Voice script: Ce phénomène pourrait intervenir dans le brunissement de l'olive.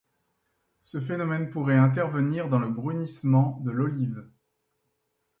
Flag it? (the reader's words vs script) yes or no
no